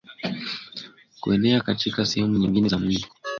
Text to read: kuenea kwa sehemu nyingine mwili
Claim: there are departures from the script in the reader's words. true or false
true